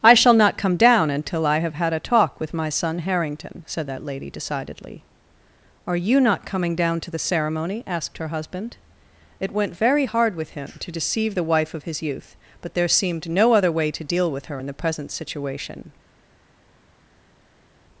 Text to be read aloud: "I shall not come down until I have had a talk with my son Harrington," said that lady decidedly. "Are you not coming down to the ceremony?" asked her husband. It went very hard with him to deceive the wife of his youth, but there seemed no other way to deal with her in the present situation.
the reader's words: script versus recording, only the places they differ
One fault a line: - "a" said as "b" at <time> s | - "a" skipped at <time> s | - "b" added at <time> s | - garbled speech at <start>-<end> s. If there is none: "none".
none